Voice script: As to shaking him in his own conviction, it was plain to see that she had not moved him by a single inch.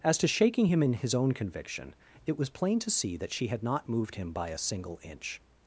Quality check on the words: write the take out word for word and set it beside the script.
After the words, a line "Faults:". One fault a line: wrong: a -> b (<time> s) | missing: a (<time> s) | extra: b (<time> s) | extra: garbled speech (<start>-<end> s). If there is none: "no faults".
As to shaking him in his own conviction, it was plain to see that she had not moved him by a single inch.
Faults:
no faults